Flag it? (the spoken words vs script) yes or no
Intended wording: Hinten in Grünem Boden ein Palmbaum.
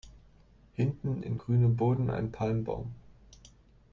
no